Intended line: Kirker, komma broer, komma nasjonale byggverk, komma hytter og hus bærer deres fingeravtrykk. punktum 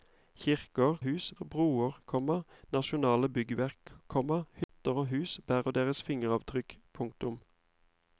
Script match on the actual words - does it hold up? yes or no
no